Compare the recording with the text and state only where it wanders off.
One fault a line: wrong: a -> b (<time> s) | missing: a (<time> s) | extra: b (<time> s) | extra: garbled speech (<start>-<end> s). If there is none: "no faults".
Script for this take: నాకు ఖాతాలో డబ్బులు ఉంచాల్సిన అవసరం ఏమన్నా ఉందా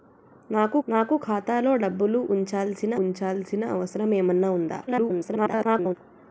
extra: నాకు (0.9 s)
extra: ఉంచాల్సిన (3.0 s)
extra: garbled speech (4.9-6.0 s)